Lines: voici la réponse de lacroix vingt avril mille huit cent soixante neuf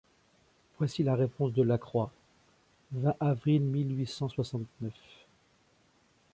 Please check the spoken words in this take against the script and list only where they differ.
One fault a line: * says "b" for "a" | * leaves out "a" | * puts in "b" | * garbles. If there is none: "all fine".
all fine